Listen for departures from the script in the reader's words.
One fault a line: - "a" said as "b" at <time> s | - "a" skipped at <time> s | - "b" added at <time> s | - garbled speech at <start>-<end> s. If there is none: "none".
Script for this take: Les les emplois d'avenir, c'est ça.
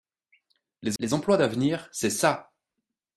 none